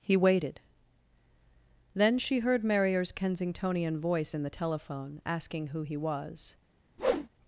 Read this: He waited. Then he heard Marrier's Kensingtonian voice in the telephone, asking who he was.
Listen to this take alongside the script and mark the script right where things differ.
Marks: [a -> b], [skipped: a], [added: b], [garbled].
He waited. Then [he -> she] heard Marrier's Kensingtonian voice in the telephone, asking who he was.